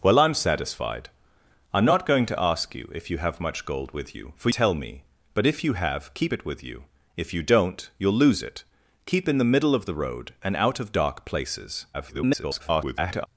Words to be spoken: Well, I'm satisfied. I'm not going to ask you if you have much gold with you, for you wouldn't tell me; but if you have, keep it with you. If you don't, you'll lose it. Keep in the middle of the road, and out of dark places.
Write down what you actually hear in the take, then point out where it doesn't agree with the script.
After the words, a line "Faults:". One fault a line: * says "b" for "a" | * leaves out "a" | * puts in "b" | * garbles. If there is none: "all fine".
Well, I'm satisfied. I'm not going to ask you if you have much gold with you, for tell me; but if you have, keep it with you. If you don't, you'll lose it. Keep in the middle of the road, and out of dark places. [garbled]
Faults:
* leaves out "you wouldn't"
* garbles